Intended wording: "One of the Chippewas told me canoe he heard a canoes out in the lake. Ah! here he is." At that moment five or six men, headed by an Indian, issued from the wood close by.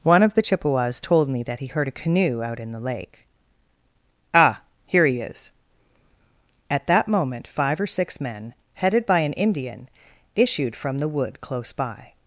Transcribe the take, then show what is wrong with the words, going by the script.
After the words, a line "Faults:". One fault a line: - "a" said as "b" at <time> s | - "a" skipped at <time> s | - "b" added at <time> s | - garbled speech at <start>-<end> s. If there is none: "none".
"One of the Chippewas told me that he heard a canoe out in the lake. Ah! here he is." At that moment five or six men, headed by an Indian, issued from the wood close by.
Faults:
- "canoe" said as "that" at 1.4 s
- "canoes" said as "canoe" at 1.9 s